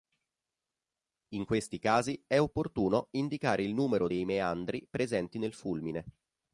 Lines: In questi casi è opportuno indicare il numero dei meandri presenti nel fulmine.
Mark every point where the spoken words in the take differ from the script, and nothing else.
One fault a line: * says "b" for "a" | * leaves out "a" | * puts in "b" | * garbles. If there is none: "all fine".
all fine